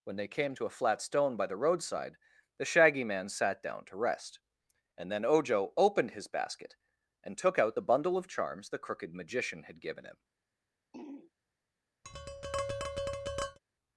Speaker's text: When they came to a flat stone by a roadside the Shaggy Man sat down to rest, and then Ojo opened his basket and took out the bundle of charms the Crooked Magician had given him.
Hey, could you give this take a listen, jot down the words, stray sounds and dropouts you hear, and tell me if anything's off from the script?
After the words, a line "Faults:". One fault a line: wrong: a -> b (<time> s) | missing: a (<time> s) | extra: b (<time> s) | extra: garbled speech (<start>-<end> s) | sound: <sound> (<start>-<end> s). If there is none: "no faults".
When they came to a flat stone by the roadside the Shaggy Man sat down to rest, and then Ojo opened his basket and took out the bundle of charms the Crooked Magician had given him.
Faults:
wrong: a -> the (1.4 s)
sound: throat clearing (10.9-11.3 s)
sound: tap (12.0-13.6 s)